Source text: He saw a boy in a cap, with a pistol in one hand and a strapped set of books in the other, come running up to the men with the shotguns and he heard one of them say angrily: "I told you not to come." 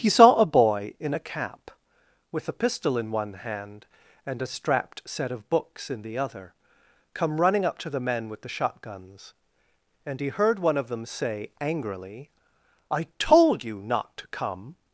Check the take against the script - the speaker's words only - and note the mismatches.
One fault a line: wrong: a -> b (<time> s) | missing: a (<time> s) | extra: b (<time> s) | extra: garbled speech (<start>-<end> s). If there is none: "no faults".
no faults